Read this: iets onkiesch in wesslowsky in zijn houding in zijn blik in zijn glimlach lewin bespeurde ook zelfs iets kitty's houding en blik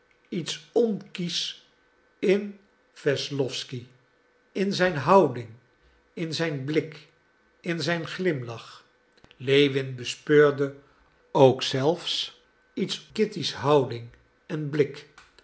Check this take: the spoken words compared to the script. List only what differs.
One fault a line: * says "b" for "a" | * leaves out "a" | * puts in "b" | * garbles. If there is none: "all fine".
all fine